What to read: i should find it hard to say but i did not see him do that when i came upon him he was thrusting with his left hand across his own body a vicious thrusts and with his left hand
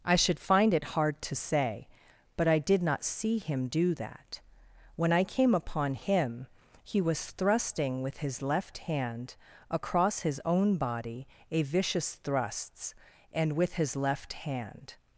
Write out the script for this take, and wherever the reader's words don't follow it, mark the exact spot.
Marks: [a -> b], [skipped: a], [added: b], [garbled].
i should find it hard to say but i did not see him do that when i came upon him he was thrusting with his left hand across his own body a vicious thrusts and with his left hand